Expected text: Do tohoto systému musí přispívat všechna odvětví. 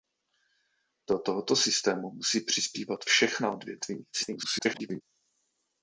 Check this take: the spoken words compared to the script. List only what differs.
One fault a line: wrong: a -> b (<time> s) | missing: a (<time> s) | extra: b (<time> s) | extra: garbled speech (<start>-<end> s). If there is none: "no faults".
extra: garbled speech (4.1-5.0 s)